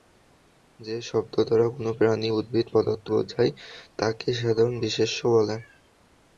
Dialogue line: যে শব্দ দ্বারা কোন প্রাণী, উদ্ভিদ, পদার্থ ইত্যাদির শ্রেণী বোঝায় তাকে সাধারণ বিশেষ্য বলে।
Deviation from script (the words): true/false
true